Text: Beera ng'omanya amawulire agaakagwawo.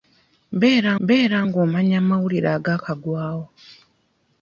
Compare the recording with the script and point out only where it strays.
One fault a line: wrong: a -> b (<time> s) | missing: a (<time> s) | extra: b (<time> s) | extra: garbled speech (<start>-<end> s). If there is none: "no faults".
extra: beera (1.1 s)